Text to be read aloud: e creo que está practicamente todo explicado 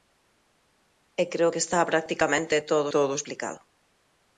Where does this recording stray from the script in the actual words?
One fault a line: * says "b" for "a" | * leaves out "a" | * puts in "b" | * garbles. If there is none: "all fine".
* puts in "todo"